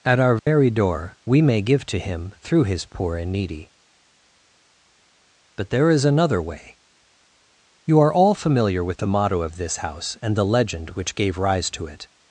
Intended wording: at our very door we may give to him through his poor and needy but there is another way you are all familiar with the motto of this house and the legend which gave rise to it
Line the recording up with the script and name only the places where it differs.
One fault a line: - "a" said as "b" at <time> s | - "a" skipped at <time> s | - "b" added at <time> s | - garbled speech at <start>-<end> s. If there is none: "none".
none